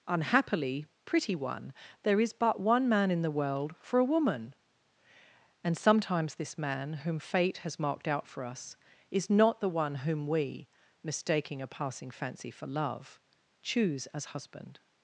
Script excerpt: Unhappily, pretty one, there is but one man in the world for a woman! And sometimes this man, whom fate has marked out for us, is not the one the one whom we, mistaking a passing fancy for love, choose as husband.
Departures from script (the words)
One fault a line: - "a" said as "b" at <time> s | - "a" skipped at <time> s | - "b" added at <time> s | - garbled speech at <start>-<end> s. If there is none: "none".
- "the one" skipped at 10.0 s